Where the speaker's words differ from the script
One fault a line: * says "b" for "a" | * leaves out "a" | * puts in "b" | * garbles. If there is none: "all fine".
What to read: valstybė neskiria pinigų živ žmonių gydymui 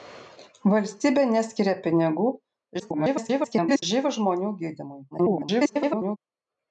* garbles
* garbles